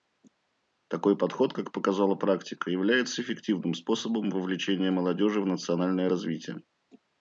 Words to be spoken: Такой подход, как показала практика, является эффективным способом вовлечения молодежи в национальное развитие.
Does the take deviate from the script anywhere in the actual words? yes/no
no